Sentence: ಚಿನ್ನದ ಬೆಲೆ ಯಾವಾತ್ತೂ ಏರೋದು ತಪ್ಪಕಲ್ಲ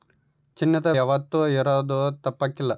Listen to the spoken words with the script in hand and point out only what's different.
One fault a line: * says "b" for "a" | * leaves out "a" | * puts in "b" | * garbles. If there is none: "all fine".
* leaves out "ಬೆಲೆ"